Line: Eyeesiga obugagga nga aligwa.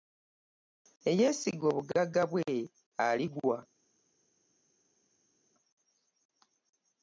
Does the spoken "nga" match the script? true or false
false